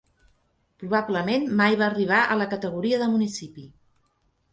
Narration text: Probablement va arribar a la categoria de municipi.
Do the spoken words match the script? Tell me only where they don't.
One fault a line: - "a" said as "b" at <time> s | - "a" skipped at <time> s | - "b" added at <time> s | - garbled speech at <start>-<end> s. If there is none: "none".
- "mai" added at 1.6 s